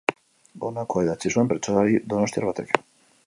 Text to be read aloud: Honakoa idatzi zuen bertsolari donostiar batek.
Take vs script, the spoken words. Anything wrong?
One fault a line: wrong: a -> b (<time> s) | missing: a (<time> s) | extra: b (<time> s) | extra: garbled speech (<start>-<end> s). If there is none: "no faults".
no faults